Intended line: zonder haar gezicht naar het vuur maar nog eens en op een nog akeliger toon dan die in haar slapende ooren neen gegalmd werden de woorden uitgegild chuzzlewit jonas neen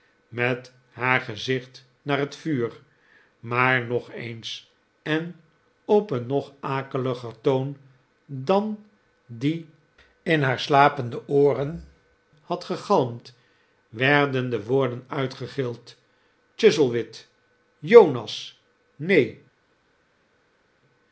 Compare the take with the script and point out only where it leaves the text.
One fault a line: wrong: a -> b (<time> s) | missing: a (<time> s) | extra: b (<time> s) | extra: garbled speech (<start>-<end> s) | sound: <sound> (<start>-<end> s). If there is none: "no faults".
wrong: zonder -> met (0.3 s)
wrong: neen -> had (12.4 s)